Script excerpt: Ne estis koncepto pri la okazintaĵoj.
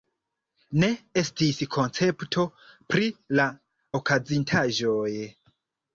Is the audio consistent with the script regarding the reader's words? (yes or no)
yes